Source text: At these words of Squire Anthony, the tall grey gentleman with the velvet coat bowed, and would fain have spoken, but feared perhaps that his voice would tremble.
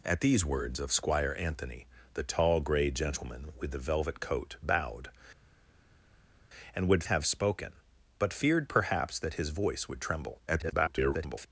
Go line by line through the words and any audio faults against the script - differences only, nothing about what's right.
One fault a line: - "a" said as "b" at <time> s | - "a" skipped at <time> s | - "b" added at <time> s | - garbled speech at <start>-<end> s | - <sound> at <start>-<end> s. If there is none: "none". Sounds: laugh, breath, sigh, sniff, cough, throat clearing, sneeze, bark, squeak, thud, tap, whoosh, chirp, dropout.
- "fain" skipped at 7.0 s
- garbled speech at 10.5-11.5 s